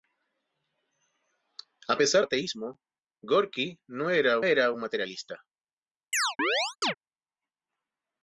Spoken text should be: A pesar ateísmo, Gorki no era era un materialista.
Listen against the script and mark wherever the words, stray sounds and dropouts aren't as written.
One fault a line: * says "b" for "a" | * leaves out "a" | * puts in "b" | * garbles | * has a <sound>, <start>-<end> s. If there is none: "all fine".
* has a chirp, 6.1-6.9 s